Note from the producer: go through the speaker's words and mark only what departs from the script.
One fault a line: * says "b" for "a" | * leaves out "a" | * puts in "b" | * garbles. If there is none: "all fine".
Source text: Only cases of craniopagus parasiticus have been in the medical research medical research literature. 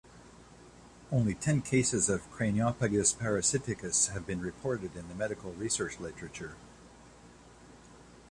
* puts in "ten"
* puts in "reported"
* leaves out "medical research"